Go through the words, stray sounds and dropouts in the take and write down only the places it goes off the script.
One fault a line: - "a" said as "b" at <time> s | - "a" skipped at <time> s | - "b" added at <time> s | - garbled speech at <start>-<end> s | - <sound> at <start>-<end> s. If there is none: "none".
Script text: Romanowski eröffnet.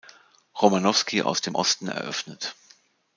- "aus dem Osten" added at 1.2 s